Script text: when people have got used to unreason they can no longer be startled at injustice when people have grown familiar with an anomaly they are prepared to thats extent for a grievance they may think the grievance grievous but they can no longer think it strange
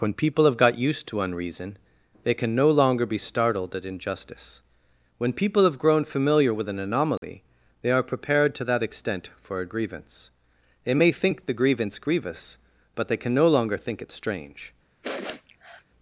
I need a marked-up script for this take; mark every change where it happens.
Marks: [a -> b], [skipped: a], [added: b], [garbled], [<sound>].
when people have got used to unreason they can no longer be startled at injustice when people have grown familiar with an anomaly [dropout] they are prepared to [thats -> that] extent for a grievance they may think the grievance grievous but they can no longer think it strange [sniff]